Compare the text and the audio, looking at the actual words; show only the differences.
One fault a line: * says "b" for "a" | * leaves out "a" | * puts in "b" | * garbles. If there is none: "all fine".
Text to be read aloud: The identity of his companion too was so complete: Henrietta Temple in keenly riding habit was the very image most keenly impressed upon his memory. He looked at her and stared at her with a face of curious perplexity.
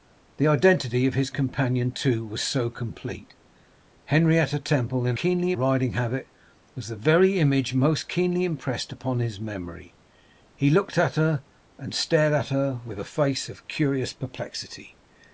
all fine